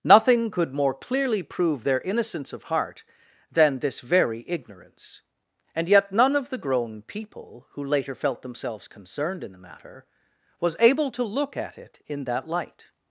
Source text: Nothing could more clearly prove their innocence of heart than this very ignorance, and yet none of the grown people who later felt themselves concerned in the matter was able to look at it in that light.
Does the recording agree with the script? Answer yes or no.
yes